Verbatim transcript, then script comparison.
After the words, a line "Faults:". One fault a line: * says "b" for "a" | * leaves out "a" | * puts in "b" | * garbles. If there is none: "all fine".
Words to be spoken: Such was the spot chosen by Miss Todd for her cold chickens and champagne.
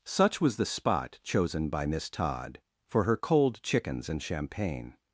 Such was the spot chosen by Miss Todd for her cold chickens and champagne.
Faults:
all fine